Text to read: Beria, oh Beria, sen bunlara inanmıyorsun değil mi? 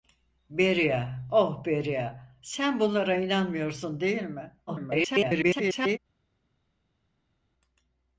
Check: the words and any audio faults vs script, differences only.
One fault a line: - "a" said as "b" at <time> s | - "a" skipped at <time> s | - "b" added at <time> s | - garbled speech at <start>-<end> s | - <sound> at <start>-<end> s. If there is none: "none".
- garbled speech at 4.7-6.0 s